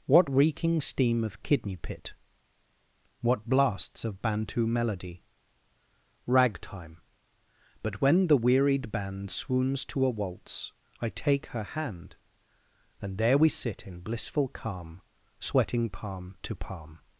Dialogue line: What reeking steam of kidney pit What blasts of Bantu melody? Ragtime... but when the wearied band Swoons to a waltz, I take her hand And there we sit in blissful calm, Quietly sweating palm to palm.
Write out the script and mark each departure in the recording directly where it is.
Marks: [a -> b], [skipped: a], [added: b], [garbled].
What reeking steam of kidney pit What blasts of Bantu melody? Ragtime... but when the wearied band Swoons to a waltz, I take her hand And there we sit in blissful calm, [skipped: Quietly] sweating palm to palm.